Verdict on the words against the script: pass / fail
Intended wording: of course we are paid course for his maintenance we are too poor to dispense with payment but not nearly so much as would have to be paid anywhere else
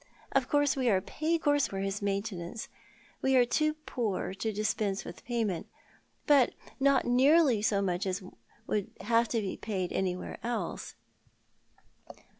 pass